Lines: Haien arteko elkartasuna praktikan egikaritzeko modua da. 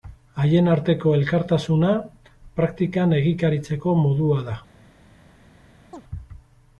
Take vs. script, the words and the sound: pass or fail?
fail